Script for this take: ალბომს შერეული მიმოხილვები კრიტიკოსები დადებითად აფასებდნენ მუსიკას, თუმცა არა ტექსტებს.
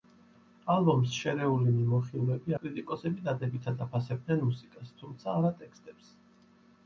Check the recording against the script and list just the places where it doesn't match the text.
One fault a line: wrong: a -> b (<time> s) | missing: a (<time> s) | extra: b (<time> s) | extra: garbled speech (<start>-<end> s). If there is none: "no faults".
no faults